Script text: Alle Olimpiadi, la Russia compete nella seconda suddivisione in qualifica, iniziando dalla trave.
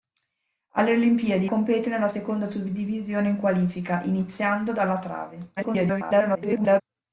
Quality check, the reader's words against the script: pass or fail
fail